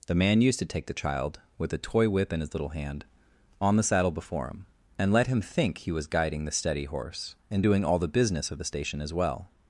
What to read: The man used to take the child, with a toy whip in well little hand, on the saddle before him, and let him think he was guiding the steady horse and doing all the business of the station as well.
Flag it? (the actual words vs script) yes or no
yes